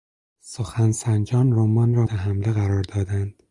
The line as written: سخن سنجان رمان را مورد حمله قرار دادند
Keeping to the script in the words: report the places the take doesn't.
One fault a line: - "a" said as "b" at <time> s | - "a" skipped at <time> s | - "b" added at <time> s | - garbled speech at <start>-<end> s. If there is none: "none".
- "مورد" skipped at 2.1 s